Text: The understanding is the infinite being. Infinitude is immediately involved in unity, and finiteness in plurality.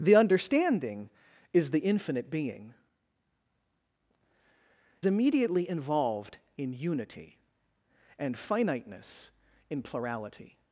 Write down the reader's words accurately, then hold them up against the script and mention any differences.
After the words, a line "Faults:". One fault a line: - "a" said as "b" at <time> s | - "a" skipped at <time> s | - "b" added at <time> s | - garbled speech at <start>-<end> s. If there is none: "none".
The understanding is the infinite being. Immediately involved in unity, and finiteness in plurality.
Faults:
- "Infinitude is" skipped at 2.7 s